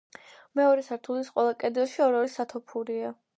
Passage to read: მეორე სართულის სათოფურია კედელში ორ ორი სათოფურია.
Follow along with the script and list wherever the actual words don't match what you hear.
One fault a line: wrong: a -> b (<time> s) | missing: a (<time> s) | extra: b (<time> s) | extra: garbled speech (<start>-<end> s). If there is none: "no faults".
wrong: სათოფურია -> ყველა (1.4 s)